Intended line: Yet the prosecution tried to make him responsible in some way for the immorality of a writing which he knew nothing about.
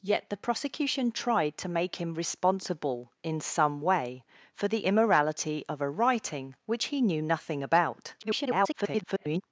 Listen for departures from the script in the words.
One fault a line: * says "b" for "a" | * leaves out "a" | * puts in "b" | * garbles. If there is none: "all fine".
* garbles